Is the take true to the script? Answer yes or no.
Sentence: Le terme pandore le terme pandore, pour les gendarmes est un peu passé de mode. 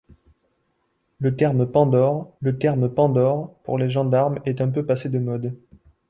yes